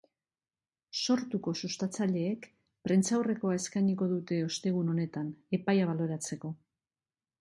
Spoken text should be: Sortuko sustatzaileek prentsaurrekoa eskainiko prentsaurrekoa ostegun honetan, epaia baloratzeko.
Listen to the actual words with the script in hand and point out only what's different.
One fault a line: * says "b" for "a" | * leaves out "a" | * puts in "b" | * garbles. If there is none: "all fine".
* says "dute" for "prentsaurrekoa"